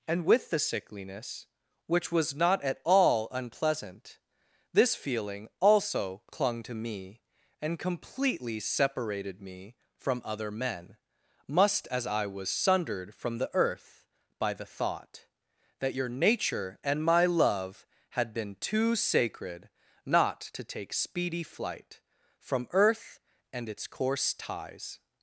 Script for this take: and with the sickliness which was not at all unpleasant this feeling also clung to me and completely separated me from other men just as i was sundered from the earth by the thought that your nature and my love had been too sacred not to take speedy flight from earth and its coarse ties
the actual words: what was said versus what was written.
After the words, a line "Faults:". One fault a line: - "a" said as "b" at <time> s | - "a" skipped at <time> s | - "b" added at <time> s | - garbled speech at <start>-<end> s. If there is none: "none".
and with the sickliness which was not at all unpleasant this feeling also clung to me and completely separated me from other men must as i was sundered from the earth by the thought that your nature and my love had been too sacred not to take speedy flight from earth and its coarse ties
Faults:
- "just" said as "must" at 11.5 s